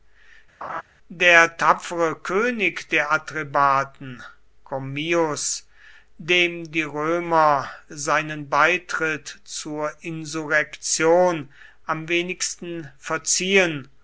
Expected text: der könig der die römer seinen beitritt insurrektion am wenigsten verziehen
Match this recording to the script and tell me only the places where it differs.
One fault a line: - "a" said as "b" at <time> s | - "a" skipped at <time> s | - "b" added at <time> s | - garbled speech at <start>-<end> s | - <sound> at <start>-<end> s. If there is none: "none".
- laugh at 0.6-0.8 s
- "tapfere" added at 1.6 s
- "atrebaten commius dem" added at 3.1 s
- "zur" added at 9.4 s